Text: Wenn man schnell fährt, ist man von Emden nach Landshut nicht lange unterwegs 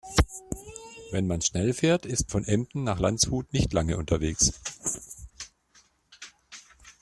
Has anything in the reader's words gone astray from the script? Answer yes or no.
yes